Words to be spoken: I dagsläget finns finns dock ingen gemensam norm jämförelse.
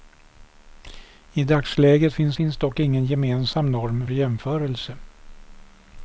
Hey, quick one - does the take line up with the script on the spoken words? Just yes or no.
yes